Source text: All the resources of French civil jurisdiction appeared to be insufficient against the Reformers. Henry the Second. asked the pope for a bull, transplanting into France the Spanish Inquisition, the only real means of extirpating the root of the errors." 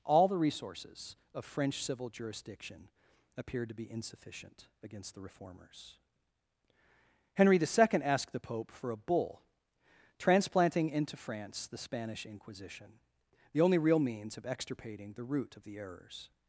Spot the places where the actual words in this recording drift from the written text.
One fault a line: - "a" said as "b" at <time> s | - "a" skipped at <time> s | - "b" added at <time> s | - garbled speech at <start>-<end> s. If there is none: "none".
none